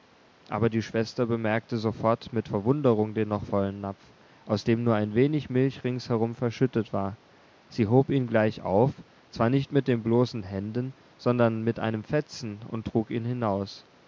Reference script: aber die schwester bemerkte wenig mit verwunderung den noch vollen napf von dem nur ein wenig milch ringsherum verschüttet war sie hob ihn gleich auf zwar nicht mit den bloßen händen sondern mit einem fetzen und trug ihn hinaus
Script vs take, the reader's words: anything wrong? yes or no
yes